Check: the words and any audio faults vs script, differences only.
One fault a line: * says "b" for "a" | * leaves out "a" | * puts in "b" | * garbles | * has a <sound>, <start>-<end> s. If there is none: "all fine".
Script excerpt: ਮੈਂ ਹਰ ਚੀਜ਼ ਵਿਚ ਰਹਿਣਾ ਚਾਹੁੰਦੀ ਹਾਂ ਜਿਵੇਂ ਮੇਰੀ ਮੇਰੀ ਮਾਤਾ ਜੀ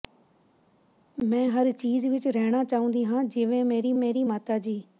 all fine